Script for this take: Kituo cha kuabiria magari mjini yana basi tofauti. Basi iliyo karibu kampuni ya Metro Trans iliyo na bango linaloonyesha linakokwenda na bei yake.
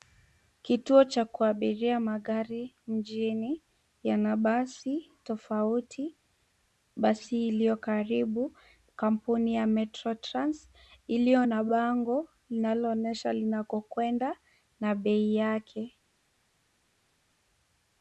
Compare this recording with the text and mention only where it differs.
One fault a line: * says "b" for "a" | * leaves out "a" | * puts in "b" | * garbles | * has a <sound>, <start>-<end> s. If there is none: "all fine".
all fine